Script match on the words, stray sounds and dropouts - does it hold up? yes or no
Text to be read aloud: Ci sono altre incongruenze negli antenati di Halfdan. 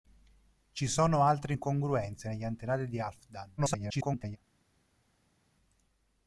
no